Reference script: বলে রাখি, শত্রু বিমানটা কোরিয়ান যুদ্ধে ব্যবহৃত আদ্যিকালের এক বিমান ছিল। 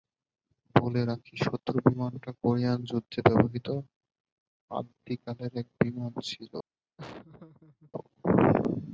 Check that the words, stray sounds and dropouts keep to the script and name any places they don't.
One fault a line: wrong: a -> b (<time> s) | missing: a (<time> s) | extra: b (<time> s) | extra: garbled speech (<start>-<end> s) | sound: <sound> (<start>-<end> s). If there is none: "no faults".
sound: laugh (7.0-7.9 s)